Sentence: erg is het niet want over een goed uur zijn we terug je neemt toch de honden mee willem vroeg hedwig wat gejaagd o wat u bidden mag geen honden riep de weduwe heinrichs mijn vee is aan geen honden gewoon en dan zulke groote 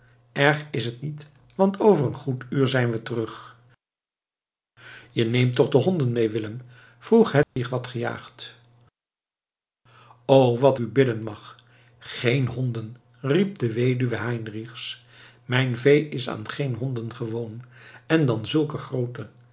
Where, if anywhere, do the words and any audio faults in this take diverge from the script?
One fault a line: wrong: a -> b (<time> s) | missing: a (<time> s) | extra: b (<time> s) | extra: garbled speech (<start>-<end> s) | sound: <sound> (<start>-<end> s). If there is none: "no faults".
sound: dropout (7.4-7.6 s)